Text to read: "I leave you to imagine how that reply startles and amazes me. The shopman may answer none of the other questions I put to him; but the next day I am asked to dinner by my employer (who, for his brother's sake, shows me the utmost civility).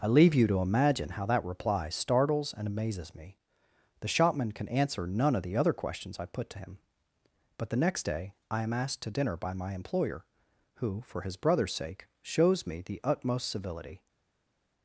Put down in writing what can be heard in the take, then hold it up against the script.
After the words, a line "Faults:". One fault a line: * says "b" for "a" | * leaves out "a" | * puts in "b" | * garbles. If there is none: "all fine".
"I leave you to imagine how that reply startles and amazes me. The shopman can answer none of the other questions I put to him; but the next day I am asked to dinner by my employer (who, for his brother's sake, shows me the utmost civility).
Faults:
* says "can" for "may"